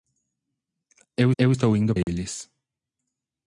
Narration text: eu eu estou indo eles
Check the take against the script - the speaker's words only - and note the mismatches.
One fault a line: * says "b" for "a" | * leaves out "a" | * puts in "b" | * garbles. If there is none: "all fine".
all fine